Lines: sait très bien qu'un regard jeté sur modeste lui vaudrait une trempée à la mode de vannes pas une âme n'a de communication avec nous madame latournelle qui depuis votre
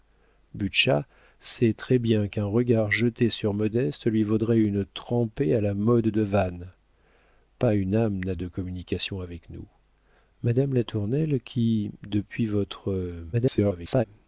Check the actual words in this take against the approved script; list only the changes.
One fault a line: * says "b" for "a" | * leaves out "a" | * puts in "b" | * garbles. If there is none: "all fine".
* garbles